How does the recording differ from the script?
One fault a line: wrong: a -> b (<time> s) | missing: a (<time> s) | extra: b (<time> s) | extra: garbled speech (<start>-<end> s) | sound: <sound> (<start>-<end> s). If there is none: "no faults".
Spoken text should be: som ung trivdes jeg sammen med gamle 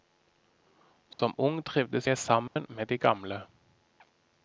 sound: dropout (1.1-1.2 s)
sound: dropout (2.5-2.6 s)
extra: de (2.9 s)